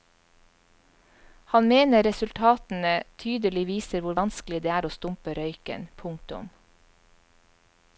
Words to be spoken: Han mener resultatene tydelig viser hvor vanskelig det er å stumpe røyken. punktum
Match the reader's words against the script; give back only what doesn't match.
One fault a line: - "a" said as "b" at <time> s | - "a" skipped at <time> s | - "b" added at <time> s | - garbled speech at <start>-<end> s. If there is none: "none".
none